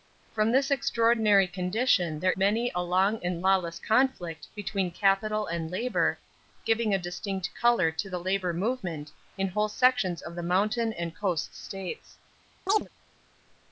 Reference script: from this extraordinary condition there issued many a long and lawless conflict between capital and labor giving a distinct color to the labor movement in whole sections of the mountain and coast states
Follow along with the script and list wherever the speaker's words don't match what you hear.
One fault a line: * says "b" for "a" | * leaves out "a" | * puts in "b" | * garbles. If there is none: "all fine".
* leaves out "issued"